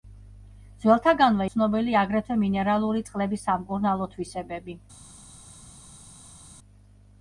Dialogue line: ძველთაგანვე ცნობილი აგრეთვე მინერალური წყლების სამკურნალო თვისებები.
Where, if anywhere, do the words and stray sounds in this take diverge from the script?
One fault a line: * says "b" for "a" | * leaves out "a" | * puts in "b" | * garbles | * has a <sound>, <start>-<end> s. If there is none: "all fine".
all fine